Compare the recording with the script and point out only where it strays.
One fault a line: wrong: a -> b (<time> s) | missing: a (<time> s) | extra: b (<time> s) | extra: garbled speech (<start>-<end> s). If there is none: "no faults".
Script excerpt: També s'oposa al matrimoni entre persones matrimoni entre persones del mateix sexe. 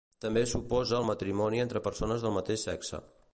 missing: matrimoni entre persones (2.3 s)